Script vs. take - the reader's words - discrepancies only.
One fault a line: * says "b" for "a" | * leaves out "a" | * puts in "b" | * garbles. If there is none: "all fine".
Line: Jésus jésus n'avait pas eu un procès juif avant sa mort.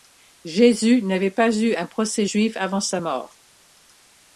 * leaves out "jésus"